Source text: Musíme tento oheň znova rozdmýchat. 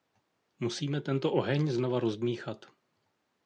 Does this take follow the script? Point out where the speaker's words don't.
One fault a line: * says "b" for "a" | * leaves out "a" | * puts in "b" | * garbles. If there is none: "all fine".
all fine